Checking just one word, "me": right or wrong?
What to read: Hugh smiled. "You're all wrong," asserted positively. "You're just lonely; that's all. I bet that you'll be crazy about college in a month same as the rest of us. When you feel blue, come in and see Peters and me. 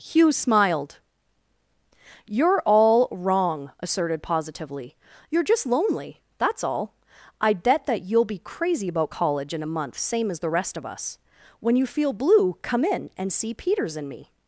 right